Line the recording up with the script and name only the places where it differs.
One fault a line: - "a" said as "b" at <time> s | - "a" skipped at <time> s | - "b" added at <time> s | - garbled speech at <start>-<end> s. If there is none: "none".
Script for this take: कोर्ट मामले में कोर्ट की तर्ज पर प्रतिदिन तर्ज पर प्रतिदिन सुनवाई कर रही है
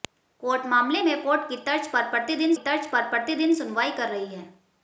none